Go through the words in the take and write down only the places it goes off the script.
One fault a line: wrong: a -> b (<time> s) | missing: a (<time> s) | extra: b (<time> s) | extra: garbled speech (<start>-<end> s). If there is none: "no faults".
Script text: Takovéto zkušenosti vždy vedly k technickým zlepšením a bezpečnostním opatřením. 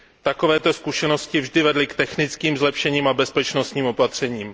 no faults